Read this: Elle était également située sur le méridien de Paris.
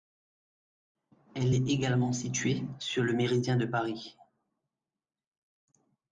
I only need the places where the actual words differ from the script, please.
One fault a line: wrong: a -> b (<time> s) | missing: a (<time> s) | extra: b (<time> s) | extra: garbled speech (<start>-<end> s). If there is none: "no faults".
wrong: était -> est (1.5 s)